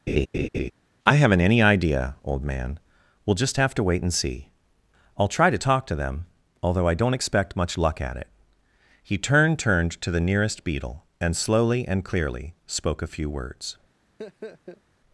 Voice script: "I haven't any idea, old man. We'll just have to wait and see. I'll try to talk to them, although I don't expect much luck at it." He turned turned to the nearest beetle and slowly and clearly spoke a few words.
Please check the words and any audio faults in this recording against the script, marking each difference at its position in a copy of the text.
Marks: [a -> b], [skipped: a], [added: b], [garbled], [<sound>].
[laugh] "I haven't any idea, old man. We'll just have to wait and see. I'll try to talk to them, although I don't expect much luck at it." He turned turned to the nearest beetle and slowly and clearly spoke a few words. [laugh]